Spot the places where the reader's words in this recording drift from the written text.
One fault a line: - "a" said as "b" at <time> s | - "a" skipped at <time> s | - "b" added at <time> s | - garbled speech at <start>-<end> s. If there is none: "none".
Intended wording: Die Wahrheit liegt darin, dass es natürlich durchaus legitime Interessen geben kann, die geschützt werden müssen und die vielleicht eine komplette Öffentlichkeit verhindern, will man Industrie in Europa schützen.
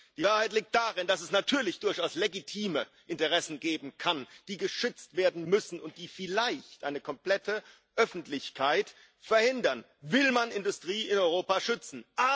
none